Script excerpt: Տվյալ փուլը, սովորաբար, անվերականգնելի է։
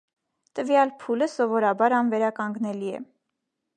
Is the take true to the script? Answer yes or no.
yes